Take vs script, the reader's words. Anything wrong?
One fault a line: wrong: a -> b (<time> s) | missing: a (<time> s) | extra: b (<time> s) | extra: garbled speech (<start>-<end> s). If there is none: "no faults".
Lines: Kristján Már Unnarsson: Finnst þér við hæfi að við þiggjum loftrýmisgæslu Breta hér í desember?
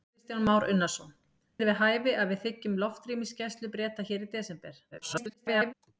missing: Finnst (1.1 s)
extra: garbled speech (4.9-5.7 s)